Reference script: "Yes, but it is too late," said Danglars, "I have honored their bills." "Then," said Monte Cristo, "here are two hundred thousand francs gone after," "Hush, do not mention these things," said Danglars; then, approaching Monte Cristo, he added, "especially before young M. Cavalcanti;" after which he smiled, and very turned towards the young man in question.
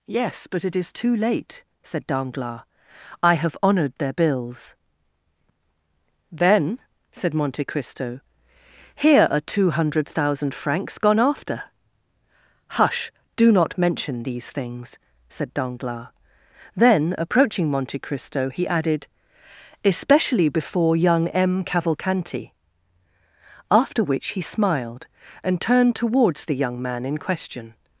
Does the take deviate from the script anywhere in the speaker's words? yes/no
yes